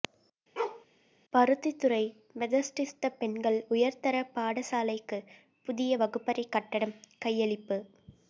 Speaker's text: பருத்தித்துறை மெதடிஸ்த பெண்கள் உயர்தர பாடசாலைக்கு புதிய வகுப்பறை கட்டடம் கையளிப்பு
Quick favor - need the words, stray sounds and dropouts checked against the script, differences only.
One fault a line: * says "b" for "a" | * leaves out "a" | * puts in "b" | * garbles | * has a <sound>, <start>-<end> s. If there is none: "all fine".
* has a bark, 0.6-0.9 s